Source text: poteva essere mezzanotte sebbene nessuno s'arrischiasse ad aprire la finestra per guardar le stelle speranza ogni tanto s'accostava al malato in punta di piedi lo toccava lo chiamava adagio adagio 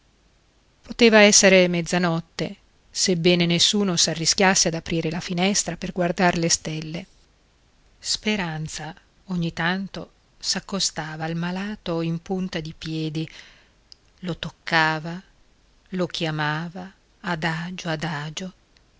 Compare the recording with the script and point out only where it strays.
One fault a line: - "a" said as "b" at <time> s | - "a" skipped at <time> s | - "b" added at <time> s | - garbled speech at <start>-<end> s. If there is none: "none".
none